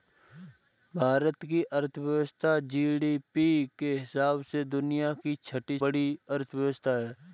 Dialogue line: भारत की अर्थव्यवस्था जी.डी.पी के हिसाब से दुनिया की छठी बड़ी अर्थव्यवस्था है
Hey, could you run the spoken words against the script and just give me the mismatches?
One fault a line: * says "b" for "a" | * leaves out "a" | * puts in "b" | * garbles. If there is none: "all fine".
all fine